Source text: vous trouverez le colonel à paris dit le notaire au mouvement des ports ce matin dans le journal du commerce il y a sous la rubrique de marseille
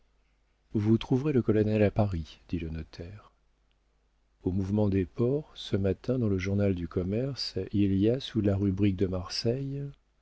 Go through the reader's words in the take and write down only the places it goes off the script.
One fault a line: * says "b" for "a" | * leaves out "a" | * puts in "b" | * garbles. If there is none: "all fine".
all fine